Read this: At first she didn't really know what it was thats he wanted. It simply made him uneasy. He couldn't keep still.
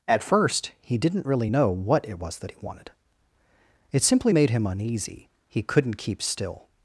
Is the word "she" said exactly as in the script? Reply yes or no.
no